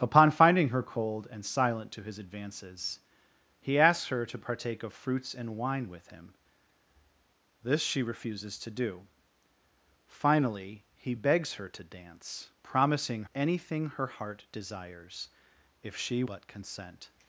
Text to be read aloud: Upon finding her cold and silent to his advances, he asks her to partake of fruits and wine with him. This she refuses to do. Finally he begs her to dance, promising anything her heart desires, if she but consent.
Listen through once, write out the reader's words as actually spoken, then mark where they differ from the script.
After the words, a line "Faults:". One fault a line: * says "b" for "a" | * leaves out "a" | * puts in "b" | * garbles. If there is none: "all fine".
Upon finding her cold and silent to his advances, he asks her to partake of fruits and wine with him. This she refuses to do. Finally he begs her to dance, promising anything her heart desires, if she but consent.
Faults:
all fine